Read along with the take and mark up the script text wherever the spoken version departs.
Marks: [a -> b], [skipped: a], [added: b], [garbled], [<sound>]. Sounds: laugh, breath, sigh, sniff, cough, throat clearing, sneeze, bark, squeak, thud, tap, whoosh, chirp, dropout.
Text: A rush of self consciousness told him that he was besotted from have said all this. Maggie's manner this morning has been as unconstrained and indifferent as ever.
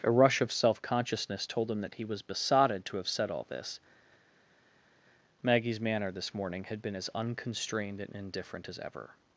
A rush of self consciousness told him that he was besotted [from -> to] have said all this. Maggie's manner this morning [has -> had] been as unconstrained and indifferent as ever.